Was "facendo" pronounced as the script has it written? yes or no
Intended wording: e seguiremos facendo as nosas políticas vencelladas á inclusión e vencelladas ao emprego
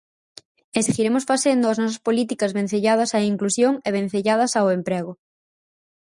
yes